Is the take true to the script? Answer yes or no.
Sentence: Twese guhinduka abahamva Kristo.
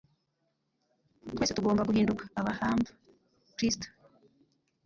no